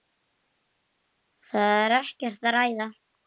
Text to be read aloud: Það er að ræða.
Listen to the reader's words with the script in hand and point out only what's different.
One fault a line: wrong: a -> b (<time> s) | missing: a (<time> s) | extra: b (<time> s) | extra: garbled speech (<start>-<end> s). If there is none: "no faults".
extra: ekkert (2.0 s)